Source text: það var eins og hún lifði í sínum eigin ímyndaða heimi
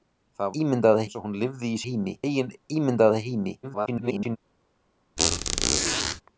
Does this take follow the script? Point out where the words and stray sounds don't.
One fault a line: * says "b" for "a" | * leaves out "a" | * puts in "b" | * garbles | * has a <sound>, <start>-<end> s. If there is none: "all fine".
* says "ímyndaða" for "var"
* says "heimi" for "sínum"
* garbles
* has a squeak, 5.2-6.2 s